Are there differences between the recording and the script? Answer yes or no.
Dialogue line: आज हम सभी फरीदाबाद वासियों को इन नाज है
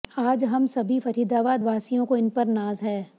yes